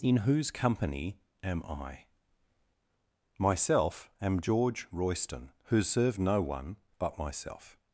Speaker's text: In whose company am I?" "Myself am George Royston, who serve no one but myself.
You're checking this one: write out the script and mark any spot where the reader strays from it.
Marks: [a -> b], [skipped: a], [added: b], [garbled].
In whose company am I?" "Myself am George Royston, who serve no one but myself.